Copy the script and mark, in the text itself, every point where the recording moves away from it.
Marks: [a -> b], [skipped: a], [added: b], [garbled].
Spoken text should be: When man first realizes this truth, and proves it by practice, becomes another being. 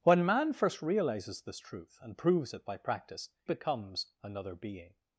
When man first realizes this truth, and proves it by practice, becomes another being.